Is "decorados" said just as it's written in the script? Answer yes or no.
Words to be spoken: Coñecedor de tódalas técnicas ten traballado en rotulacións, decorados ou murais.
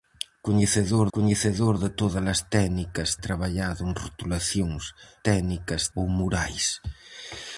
no